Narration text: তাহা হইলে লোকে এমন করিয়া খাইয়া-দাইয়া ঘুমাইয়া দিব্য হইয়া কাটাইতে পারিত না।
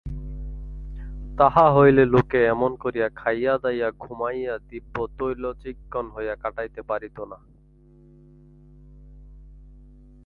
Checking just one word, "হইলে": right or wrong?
right